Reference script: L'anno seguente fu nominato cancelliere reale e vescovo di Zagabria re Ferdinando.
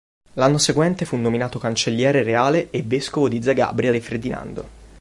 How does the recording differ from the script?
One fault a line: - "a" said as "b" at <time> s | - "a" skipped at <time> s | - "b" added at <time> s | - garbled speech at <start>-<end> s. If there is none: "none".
none